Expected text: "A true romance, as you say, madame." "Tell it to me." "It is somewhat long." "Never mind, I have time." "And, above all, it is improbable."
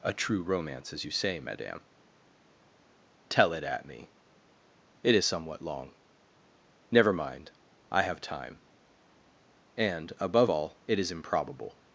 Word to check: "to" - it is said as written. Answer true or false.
false